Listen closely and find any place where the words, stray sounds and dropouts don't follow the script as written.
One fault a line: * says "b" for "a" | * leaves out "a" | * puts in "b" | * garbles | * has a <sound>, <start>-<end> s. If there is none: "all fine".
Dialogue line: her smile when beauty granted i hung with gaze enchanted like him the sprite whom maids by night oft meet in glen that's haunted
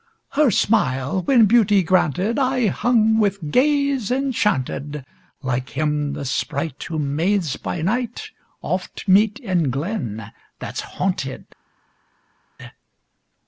all fine